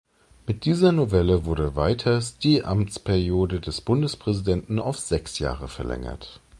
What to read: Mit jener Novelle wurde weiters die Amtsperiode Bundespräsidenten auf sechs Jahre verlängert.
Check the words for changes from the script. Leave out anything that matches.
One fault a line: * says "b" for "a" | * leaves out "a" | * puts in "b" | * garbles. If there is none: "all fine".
* says "dieser" for "jener"
* puts in "des"